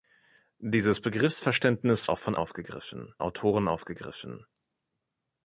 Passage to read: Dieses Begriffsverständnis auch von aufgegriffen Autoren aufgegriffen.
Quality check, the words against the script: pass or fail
pass